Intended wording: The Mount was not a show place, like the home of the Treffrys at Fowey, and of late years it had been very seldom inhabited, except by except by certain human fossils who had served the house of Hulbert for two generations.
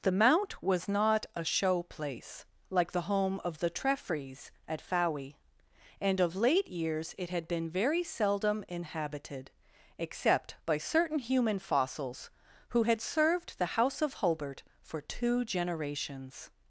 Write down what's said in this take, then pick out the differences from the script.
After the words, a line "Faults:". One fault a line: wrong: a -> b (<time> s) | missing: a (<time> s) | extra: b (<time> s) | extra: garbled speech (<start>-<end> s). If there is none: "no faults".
The Mount was not a show place, like the home of the Treffrys at Fowey, and of late years it had been very seldom inhabited, except by certain human fossils who had served the house of Hulbert for two generations.
Faults:
missing: except by (10.8 s)